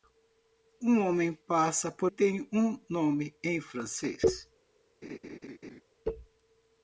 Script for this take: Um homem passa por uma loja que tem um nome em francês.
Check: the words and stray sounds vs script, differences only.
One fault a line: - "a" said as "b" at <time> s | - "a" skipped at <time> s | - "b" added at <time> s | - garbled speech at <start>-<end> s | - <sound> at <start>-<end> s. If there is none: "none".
- "uma loja que" skipped at 2.1 s
- laugh at 5.0-5.8 s